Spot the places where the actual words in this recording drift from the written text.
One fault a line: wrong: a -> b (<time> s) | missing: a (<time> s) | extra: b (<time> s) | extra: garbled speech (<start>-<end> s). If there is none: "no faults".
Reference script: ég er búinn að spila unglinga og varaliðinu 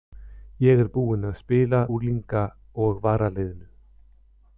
no faults